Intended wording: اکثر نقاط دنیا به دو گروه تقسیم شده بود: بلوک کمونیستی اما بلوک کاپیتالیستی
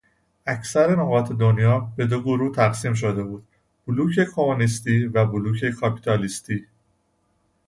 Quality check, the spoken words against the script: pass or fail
fail